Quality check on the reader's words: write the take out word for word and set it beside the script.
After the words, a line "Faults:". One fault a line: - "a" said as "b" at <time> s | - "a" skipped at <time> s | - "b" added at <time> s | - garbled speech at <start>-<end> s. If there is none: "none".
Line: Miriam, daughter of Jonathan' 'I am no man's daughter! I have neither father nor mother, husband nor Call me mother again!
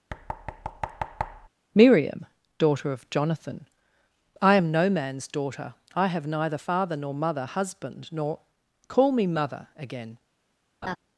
Miriam, daughter of Jonathan' 'I am no man's daughter! I have neither father nor mother, husband nor Call me mother again!
Faults:
none